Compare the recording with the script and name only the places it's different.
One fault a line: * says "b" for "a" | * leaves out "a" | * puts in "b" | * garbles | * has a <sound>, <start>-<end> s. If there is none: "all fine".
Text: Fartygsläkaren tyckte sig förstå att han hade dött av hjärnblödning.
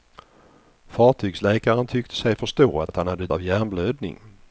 * puts in "att"
* leaves out "dött"